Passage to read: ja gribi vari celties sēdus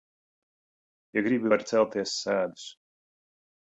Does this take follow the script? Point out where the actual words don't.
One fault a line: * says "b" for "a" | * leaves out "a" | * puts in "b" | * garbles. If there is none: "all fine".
all fine